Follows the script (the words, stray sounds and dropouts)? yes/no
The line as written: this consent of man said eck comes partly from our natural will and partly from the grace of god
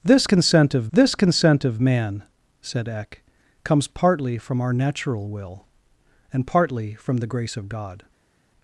no